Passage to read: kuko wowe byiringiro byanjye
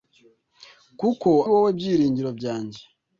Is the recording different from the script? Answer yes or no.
no